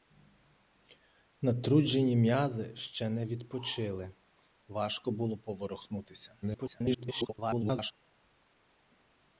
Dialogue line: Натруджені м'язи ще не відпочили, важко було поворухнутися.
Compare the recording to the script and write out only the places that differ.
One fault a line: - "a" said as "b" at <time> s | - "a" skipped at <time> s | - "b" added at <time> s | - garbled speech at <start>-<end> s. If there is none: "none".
- garbled speech at 6.4-7.9 s